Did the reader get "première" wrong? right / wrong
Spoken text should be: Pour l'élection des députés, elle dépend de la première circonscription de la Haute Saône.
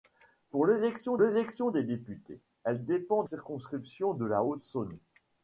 wrong